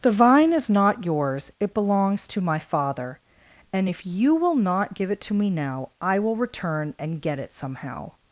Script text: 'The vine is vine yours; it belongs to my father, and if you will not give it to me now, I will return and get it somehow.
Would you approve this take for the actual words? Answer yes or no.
no